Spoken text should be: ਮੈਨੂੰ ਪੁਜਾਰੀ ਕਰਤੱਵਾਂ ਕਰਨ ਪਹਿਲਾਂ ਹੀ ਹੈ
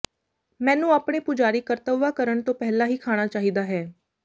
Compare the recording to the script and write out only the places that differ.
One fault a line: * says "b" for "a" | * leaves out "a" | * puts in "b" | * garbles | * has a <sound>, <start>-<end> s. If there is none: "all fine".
* puts in "ਆਪਣੇ"
* puts in "ਤੋਂ"
* puts in "ਖਾਣਾ ਚਾਹੀਦਾ"